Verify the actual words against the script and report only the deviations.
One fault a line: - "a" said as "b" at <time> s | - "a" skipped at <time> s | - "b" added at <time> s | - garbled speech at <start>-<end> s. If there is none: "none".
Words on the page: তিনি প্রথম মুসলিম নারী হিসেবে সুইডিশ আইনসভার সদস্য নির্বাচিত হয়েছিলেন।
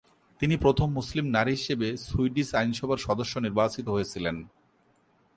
none